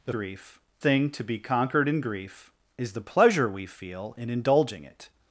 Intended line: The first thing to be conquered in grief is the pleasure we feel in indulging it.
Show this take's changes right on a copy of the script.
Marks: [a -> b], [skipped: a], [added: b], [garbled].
The [first -> grief] thing to be conquered in grief is the pleasure we feel in indulging it.